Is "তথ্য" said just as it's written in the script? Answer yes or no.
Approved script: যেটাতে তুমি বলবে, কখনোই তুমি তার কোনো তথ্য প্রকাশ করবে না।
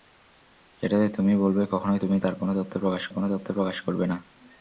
yes